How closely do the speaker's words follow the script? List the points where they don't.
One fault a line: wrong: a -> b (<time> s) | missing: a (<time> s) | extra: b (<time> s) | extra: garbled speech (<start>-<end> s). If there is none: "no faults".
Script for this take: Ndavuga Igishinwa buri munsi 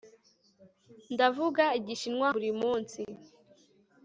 no faults